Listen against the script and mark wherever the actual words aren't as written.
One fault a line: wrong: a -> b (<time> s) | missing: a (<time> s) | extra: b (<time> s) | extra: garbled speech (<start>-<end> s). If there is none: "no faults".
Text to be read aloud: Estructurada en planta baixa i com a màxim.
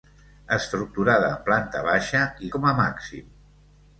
no faults